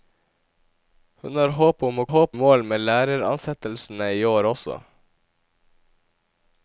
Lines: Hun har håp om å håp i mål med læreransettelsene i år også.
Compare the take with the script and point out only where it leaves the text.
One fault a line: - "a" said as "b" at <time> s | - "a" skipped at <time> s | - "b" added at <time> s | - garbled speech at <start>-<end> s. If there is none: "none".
none